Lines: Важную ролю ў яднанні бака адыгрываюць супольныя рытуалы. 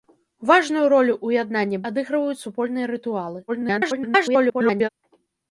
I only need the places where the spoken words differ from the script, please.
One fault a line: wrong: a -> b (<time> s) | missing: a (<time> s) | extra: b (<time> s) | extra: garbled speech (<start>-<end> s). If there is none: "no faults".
missing: бака (1.8 s)
extra: garbled speech (3.5-4.9 s)